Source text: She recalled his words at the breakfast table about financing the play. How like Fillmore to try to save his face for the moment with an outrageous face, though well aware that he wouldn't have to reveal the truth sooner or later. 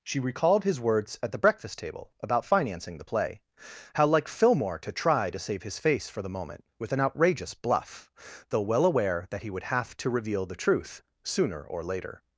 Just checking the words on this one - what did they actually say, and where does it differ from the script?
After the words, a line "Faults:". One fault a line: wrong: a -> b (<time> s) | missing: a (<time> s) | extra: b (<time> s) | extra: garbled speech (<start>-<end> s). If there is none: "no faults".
She recalled his words at the breakfast table about financing the play. How like Fillmore to try to save his face for the moment with an outrageous bluff, though well aware that he would have to reveal the truth sooner or later.
Faults:
wrong: face -> bluff (7.5 s)
wrong: wouldn't -> would (9.5 s)